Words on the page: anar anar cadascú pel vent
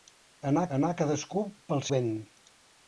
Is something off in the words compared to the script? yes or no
no